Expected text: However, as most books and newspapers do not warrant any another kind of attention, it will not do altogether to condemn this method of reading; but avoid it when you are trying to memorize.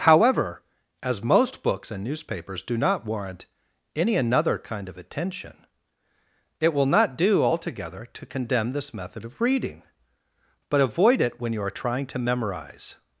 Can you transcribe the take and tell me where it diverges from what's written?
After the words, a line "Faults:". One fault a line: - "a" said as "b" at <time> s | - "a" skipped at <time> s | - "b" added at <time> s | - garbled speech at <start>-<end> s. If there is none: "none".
However, as most books and newspapers do not warrant any another kind of attention, it will not do altogether to condemn this method of reading; but avoid it when you are trying to memorize.
Faults:
none